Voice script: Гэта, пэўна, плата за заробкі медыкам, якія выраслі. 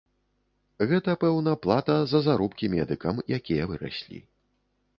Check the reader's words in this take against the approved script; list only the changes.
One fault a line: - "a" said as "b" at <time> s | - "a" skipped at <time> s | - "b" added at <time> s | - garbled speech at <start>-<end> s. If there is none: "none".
none